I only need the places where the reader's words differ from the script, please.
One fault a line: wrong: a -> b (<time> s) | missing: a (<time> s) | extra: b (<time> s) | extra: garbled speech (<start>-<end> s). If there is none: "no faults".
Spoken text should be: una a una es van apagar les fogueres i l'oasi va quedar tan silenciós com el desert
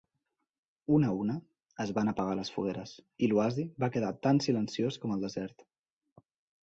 no faults